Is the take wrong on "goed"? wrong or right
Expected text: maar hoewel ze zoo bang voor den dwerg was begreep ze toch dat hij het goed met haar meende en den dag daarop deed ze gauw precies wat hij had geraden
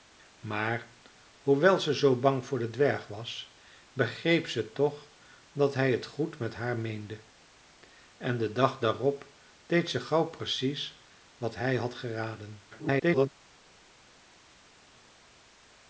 right